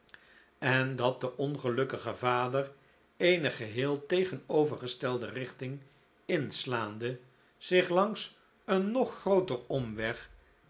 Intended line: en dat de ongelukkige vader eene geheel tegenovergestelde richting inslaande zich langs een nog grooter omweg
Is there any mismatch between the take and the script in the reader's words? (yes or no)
no